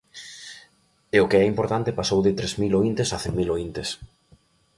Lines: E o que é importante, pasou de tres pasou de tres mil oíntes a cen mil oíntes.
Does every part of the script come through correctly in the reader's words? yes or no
no